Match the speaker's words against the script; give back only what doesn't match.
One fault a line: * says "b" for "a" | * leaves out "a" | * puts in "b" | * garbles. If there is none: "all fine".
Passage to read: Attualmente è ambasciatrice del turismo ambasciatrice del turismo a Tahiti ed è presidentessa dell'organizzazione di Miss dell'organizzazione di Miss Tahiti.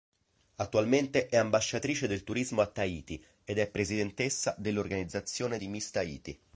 * leaves out "ambasciatrice del turismo"
* leaves out "dell'organizzazione di Miss"